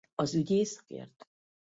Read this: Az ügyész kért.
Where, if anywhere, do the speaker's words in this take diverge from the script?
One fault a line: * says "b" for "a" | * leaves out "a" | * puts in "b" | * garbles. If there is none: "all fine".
all fine